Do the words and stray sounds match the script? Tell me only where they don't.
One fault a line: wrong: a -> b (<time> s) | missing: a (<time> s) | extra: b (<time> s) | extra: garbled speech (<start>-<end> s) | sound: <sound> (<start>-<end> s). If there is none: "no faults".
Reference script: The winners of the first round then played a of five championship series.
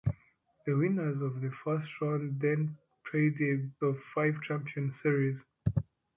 no faults